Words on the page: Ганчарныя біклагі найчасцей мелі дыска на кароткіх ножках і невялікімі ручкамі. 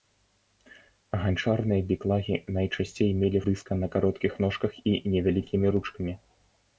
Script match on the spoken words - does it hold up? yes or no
yes